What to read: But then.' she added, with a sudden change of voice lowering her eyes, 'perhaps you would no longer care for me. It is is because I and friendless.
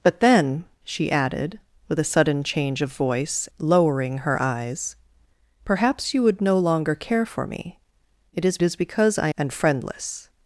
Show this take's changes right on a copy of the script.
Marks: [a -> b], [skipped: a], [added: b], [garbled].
But then.' she added, with a sudden change of voice lowering her eyes, 'perhaps you would no longer care for me. It is is because I and friendless.